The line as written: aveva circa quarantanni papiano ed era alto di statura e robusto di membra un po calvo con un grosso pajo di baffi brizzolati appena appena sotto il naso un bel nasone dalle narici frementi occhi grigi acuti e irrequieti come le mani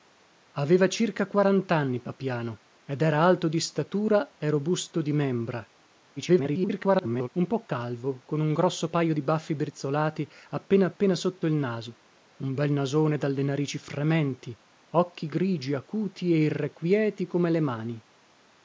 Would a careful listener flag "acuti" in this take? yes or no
no